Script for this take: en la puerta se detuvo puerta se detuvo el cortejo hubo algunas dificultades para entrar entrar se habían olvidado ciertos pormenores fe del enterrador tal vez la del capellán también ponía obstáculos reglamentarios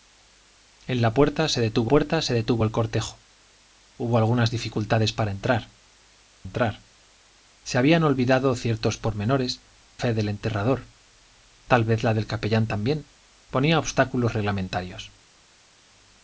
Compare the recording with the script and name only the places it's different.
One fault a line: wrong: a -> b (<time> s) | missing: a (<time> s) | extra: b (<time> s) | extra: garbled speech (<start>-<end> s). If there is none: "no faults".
no faults